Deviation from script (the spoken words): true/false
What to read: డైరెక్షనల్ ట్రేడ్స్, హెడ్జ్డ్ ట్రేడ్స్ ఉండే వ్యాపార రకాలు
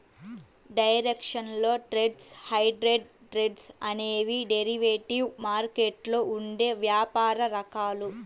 true